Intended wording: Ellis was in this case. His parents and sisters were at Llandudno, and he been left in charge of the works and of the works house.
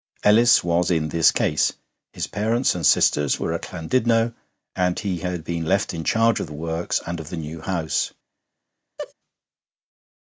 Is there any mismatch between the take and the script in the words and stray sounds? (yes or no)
yes